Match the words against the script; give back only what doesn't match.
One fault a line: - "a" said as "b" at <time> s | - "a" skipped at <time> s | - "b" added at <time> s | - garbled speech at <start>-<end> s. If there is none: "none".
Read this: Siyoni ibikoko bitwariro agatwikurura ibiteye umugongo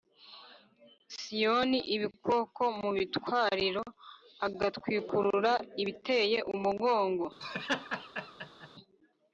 - "mu" added at 2.8 s